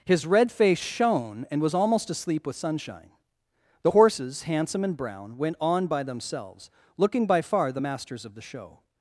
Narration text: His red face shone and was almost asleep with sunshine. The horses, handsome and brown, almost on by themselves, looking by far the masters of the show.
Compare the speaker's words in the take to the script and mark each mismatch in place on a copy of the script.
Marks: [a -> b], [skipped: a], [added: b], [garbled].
His red face shone and was almost asleep with sunshine. The horses, handsome and brown, [almost -> went] on by themselves, looking by far the masters of the show.